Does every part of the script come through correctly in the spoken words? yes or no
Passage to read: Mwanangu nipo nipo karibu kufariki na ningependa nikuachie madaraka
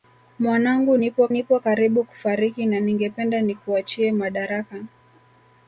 yes